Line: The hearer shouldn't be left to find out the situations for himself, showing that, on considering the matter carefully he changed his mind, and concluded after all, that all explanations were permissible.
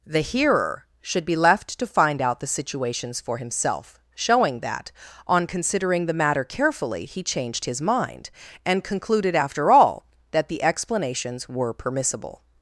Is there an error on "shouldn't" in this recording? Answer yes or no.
yes